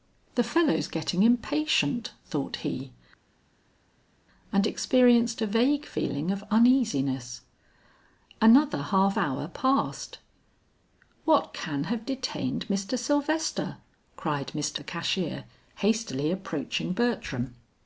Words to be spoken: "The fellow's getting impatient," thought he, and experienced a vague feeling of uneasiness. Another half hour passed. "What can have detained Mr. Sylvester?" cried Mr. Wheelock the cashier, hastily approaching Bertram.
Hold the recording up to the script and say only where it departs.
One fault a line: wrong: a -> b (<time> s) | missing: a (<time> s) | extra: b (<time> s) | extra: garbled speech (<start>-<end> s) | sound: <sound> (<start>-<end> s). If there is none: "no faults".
missing: Wheelock (14.8 s)